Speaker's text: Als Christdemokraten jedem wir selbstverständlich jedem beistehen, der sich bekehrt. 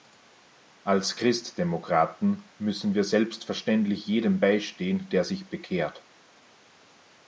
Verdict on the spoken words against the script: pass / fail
fail